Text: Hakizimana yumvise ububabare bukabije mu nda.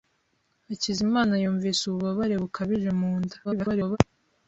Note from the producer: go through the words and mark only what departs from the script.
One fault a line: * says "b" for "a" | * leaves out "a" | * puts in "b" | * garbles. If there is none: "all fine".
* garbles